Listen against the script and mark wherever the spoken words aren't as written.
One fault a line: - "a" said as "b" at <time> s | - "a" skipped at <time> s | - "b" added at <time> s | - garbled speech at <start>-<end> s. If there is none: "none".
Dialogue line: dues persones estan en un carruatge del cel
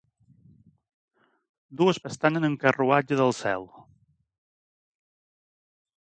- "persones" skipped at 2.0 s